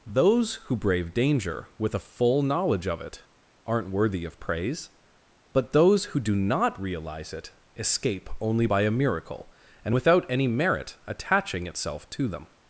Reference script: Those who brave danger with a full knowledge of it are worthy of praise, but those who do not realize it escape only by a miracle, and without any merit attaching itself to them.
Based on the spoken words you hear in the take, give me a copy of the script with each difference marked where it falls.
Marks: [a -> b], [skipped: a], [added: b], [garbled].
Those who brave danger with a full knowledge of it [are -> aren't] worthy of praise, but those who do not realize it escape only by a miracle, and without any merit attaching itself to them.